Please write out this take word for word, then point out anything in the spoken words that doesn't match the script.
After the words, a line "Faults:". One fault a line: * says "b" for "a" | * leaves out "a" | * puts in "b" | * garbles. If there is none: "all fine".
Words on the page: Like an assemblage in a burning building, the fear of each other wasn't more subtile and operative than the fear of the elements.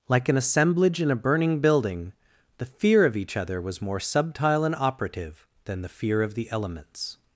Like an assemblage in a burning building, the fear of each other was more subtile and operative than the fear of the elements.
Faults:
* says "was" for "wasn't"